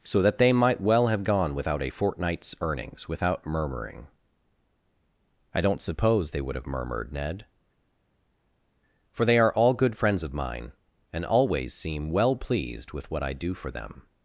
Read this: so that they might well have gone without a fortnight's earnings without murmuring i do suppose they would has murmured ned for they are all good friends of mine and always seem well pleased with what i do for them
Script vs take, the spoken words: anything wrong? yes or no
yes